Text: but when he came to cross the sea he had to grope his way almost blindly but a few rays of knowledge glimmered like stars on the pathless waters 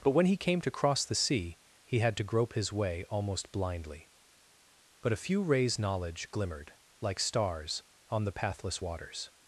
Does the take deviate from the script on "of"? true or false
true